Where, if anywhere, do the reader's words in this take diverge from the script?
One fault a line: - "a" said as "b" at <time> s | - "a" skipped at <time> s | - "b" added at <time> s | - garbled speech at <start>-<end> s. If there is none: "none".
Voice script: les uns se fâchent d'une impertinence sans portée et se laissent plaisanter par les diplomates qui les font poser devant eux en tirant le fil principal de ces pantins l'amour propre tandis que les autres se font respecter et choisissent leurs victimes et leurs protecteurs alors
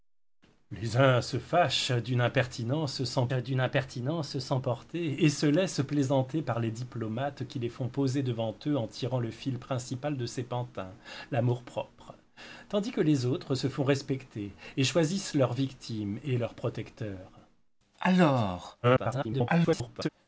- "d'une impertinence sans" added at 3.3 s
- garbled speech at 18.8-20.1 s